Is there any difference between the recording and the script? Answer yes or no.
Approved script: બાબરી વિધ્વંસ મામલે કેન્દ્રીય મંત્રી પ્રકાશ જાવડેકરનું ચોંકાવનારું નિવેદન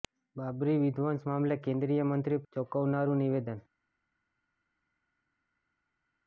yes